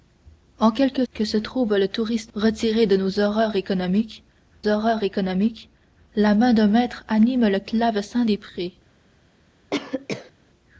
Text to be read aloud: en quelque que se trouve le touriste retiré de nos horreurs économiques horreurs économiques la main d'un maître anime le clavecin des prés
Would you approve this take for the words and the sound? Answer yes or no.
no